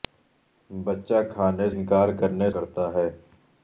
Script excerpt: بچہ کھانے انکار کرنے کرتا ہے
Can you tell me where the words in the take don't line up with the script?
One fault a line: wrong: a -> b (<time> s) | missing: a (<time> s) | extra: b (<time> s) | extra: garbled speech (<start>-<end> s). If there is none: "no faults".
no faults